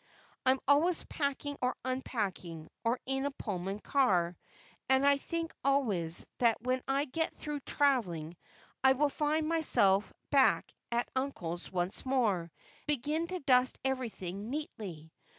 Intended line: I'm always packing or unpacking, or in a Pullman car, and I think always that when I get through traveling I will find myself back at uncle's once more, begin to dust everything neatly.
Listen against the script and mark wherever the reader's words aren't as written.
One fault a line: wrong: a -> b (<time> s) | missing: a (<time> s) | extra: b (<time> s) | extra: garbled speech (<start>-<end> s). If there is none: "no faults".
no faults